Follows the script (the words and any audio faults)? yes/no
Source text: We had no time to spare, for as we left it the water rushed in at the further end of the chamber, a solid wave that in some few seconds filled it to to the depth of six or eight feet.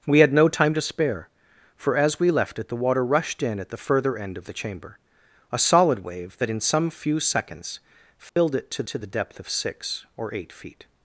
no